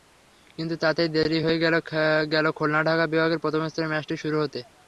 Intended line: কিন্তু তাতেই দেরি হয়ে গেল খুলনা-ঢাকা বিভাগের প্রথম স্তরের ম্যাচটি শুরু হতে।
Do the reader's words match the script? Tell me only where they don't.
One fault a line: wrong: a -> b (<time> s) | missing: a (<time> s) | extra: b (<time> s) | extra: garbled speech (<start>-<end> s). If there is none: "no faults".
no faults